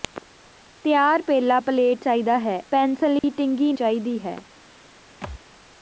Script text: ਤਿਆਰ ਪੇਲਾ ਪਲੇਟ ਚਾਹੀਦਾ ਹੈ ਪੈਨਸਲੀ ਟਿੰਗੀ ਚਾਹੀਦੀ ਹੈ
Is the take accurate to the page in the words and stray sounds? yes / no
no